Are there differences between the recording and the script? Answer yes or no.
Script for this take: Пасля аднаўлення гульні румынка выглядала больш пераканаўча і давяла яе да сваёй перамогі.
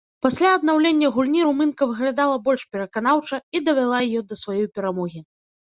no